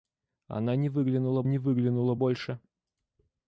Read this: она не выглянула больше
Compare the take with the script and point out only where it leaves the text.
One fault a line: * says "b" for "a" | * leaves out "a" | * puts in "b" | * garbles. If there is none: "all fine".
* puts in "не выглянула"